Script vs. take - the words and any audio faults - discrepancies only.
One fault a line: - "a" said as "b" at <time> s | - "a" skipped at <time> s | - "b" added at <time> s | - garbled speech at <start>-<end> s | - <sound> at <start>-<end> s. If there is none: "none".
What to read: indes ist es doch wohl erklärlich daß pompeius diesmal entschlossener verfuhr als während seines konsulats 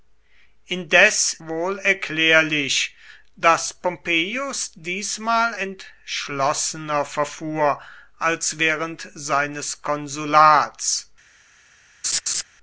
- "ist es doch" skipped at 1.3 s
- laugh at 12.0-12.4 s